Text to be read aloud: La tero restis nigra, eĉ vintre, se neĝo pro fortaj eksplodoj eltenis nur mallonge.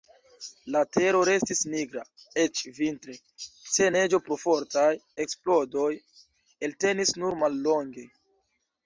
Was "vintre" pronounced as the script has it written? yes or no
yes